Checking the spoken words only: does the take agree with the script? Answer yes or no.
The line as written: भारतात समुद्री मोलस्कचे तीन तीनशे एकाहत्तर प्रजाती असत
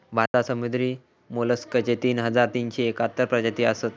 no